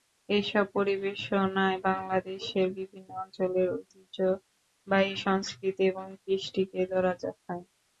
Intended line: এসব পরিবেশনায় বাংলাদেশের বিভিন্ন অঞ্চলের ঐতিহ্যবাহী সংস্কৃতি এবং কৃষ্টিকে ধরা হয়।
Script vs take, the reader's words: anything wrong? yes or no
no